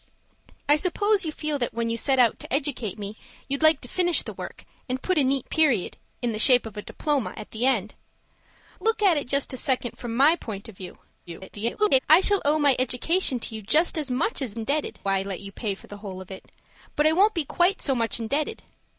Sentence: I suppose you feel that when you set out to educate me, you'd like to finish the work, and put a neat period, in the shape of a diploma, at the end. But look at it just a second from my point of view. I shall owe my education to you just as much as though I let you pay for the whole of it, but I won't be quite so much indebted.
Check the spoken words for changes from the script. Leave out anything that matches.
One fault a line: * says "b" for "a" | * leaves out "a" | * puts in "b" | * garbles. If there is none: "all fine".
* leaves out "But"
* garbles
* says "indebted" for "though"